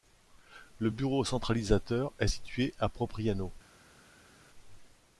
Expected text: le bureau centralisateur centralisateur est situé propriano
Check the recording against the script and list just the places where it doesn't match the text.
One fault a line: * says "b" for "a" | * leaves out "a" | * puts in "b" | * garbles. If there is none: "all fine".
* leaves out "centralisateur"
* puts in "à"